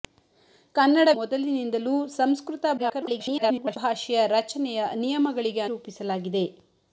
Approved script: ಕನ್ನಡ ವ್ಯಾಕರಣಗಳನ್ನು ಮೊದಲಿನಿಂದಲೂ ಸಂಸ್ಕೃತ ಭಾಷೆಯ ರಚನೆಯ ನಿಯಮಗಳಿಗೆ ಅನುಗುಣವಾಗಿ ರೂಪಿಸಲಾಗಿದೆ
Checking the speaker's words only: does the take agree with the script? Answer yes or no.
no